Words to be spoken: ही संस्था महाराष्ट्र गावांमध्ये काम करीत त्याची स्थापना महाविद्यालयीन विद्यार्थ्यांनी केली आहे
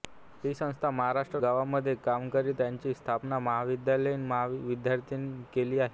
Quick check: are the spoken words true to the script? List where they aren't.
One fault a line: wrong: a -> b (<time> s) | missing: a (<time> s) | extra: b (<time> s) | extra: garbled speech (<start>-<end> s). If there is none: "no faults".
no faults